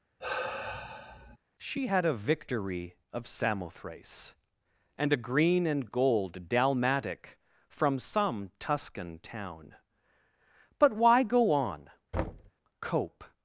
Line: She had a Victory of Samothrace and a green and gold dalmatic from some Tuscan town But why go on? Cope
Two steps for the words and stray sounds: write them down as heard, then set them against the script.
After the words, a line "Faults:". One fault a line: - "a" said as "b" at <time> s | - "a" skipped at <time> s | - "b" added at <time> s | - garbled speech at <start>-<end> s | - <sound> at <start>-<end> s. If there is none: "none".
She had a Victory of Samothrace and a green and gold dalmatic from some Tuscan town But why go on? Cope
Faults:
- sigh at 0.2-1.4 s
- thud at 12.1-12.5 s